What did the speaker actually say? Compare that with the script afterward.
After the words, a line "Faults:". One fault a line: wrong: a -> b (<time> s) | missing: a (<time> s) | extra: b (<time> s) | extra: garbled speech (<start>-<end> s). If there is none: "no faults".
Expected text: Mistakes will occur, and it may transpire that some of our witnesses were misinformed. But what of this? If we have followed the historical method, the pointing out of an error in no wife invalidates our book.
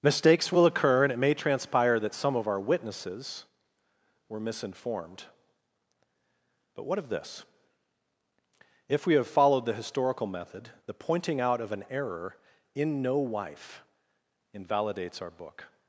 Mistakes will occur, and it may transpire that some of our witnesses were misinformed. But what of this? If we have followed the historical method, the pointing out of an error in no wife invalidates our book.
Faults:
no faults